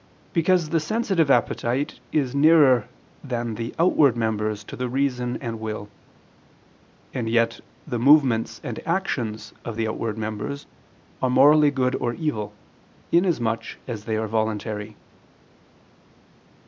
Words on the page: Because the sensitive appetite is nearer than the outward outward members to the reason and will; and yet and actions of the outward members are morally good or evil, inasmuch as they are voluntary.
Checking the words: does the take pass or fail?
fail